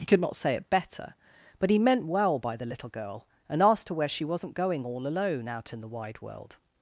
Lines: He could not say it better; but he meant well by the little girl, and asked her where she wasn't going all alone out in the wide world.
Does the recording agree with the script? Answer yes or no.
yes